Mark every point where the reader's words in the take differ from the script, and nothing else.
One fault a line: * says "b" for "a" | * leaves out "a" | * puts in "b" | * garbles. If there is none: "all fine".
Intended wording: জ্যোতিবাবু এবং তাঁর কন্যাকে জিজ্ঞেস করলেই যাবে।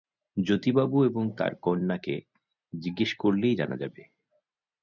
* puts in "জানা"